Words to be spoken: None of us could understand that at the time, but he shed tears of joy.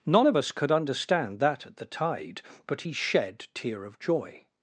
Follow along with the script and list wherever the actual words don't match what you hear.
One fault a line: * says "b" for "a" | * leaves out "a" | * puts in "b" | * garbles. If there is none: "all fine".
* says "tide" for "time"
* says "tear" for "tears"